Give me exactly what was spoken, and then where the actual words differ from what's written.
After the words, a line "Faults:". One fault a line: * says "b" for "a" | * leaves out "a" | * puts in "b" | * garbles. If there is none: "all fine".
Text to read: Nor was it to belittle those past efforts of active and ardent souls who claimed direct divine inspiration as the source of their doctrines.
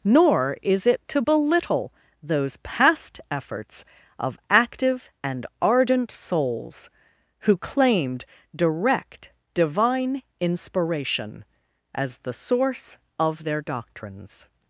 Nor is it to belittle those past efforts of active and ardent souls who claimed direct divine inspiration as the source of their doctrines.
Faults:
* says "is" for "was"